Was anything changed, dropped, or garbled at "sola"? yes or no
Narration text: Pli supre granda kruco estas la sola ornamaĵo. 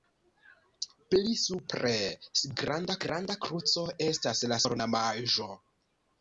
yes